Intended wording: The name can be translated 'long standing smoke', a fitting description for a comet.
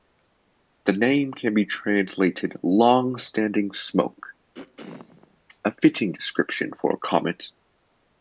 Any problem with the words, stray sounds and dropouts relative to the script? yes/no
yes